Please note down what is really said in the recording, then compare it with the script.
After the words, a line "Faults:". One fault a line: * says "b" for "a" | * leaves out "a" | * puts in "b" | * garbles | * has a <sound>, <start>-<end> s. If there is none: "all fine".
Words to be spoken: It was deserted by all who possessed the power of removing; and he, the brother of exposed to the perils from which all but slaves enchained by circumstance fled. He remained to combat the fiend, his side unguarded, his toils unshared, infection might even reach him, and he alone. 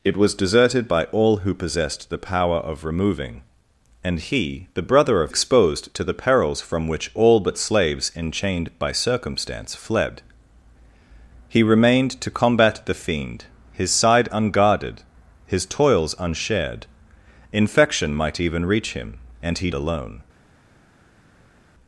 It was deserted by all who possessed the power of removing; and he, the brother of exposed to the perils from which all but slaves enchained by circumstance fled. He remained to combat the fiend, his side unguarded, his toils unshared, infection might even reach him, and he alone.
Faults:
all fine